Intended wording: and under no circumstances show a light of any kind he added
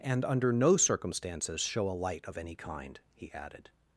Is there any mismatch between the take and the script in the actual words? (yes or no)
no